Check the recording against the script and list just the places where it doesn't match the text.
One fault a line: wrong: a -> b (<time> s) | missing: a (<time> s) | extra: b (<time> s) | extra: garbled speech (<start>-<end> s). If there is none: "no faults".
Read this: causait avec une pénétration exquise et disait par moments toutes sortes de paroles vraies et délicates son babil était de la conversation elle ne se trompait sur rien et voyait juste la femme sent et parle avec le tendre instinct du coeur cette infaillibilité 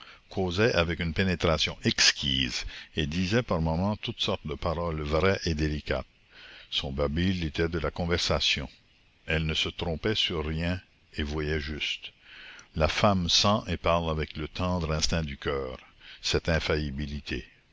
no faults